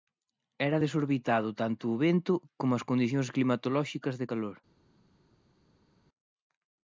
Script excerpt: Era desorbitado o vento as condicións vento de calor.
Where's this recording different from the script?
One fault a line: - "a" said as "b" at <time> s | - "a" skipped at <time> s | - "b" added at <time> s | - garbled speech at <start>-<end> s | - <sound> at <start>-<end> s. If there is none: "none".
- "tanto" added at 1.6 s
- "como" added at 2.6 s
- "vento" said as "climatolóxicas" at 3.4 s